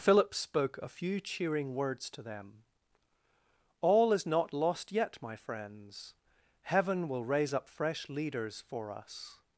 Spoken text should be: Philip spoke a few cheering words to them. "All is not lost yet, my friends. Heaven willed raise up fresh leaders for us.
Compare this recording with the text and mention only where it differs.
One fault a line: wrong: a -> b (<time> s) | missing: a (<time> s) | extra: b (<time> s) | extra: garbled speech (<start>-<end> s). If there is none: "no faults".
wrong: willed -> will (7.1 s)